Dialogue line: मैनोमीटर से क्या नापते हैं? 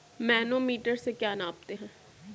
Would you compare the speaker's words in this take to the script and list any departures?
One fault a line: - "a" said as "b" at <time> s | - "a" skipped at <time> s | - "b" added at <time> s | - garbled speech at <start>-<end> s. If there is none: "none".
none